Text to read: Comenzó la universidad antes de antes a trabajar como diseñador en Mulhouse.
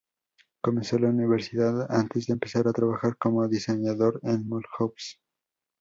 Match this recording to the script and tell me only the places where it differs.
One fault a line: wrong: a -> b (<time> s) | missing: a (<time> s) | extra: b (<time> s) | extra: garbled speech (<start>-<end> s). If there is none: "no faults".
wrong: antes -> empezar (2.3 s)